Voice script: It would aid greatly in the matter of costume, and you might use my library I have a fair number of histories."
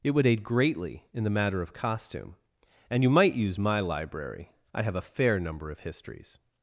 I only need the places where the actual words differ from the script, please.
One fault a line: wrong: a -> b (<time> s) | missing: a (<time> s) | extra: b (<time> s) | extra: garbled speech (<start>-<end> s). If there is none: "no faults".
no faults